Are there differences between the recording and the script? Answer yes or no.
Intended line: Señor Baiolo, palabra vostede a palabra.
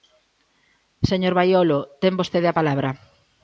yes